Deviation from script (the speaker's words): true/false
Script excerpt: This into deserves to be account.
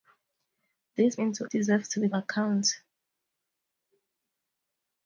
false